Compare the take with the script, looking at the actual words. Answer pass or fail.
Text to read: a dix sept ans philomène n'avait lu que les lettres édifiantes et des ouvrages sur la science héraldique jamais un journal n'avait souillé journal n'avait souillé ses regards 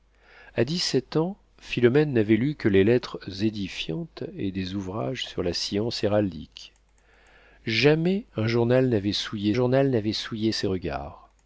pass